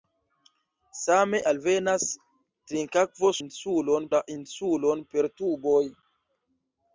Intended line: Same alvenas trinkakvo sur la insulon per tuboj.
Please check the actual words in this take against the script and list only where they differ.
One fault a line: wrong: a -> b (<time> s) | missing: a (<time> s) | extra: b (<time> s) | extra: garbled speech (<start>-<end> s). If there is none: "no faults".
wrong: sur -> insulon (3.4 s)